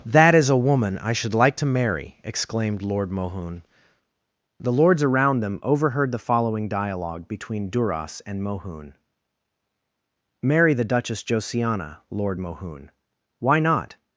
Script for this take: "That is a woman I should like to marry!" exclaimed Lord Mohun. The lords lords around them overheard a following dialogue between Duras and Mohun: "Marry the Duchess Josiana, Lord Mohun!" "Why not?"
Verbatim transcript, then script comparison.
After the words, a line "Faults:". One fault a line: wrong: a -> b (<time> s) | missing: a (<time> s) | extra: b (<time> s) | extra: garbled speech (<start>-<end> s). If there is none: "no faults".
"That is a woman I should like to marry!" exclaimed Lord Mohun. The lords around them overheard the following dialogue between Duras and Mohun: "Marry the Duchess Josiana, Lord Mohun!" "Why not?"
Faults:
missing: lords (5.0 s)
wrong: a -> the (6.1 s)